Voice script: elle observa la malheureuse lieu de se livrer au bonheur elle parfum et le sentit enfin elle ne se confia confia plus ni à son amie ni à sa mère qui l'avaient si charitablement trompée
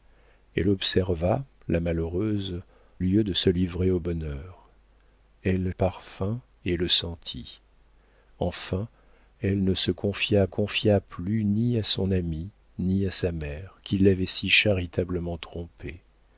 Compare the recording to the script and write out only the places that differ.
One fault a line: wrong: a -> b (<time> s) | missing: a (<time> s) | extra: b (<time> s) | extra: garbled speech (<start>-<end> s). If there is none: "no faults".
no faults